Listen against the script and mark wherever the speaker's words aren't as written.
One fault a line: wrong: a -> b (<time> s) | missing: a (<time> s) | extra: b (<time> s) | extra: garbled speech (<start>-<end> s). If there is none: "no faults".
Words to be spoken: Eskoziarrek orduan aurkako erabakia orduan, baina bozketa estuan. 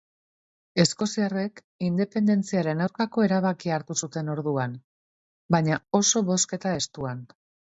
wrong: orduan -> independentziaren (1.9 s)
extra: hartu zuten (3.8 s)
extra: oso (6.0 s)